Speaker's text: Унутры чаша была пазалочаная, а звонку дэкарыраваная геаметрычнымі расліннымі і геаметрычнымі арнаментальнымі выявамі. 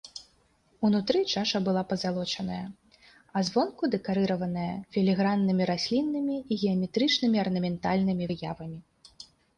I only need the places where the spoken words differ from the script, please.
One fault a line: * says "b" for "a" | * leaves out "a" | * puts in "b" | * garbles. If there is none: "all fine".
* says "філіграннымі" for "геаметрычнымі"